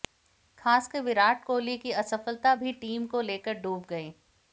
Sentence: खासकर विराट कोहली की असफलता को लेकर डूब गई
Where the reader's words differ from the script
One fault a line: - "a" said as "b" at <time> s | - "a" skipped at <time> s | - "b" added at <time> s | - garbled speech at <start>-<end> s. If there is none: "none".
- "भी टीम" added at 2.5 s